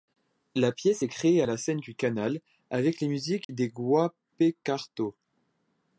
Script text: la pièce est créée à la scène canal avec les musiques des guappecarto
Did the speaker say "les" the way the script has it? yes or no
yes